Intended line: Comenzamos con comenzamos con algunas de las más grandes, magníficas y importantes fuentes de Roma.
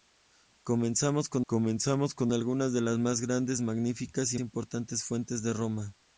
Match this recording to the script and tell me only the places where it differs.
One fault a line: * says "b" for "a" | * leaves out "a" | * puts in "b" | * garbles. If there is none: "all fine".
all fine